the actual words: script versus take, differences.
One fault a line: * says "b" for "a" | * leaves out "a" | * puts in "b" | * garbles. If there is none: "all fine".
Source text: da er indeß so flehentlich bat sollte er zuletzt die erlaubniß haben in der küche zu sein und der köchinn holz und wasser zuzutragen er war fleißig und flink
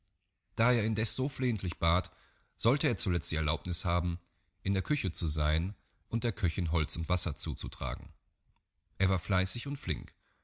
all fine